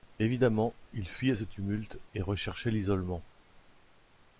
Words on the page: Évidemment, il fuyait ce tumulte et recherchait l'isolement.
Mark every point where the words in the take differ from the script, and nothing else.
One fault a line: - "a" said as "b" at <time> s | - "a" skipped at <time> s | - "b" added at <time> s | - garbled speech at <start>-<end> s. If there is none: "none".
none